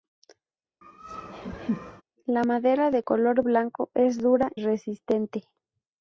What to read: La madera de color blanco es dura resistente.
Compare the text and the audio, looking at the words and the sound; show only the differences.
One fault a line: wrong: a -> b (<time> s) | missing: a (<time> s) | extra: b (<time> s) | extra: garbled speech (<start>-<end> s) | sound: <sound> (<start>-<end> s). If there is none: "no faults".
sound: laugh (0.8-2.0 s)